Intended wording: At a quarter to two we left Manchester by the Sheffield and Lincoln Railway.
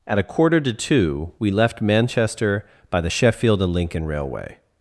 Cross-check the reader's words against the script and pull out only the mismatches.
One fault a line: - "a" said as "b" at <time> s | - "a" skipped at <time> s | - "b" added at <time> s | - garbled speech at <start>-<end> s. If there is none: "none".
none